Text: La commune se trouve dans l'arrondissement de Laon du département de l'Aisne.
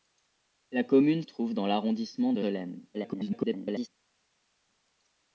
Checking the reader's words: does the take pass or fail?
fail